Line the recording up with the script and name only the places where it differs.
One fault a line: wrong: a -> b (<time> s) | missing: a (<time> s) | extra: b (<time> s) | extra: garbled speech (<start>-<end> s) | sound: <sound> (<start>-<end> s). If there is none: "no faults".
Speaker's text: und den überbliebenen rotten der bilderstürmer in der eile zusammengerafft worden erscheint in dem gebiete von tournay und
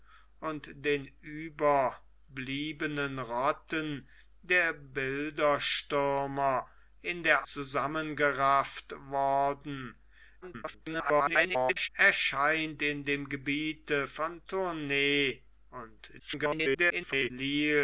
missing: eile (7.5 s)
extra: garbled speech (10.4-11.9 s)
extra: garbled speech (16.2-17.3 s)